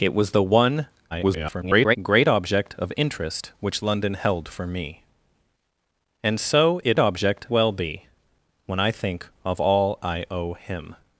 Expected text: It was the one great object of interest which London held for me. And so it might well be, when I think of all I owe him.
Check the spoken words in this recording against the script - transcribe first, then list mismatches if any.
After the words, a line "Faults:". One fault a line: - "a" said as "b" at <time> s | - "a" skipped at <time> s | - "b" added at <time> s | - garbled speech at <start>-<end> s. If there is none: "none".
It was the one [garbled] great object of interest which London held for me. And so it object well be, when I think of all I owe him.
Faults:
- garbled speech at 1.1-2.0 s
- "might" said as "object" at 7.0 s